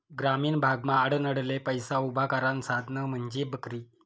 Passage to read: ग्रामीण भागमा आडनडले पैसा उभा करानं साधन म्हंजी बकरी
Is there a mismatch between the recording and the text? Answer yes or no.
no